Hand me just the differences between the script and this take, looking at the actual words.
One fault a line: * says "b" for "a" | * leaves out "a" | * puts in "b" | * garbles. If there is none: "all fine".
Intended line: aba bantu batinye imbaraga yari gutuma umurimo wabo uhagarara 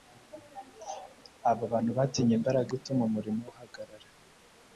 * leaves out "yari"
* leaves out "wabo"